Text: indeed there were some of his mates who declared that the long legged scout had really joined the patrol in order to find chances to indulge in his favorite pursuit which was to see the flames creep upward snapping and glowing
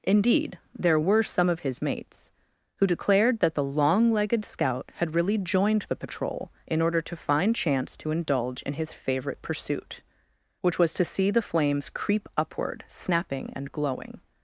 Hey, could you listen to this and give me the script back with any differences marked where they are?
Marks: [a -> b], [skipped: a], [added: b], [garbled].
indeed there were some of his mates who declared that the long legged scout had really joined the patrol in order to find [chances -> chance] to indulge in his favorite pursuit which was to see the flames creep upward snapping and glowing